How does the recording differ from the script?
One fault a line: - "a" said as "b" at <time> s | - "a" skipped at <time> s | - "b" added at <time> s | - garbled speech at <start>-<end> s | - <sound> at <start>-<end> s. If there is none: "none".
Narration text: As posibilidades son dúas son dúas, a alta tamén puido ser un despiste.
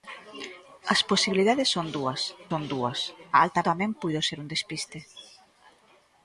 none